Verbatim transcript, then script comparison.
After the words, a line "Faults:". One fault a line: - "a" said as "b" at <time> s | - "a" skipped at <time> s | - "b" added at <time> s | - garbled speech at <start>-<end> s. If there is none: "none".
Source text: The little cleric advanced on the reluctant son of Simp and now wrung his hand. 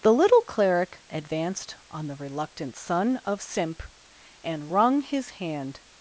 The little cleric advanced on the reluctant son of Simp and wrung his hand.
Faults:
- "now" skipped at 4.7 s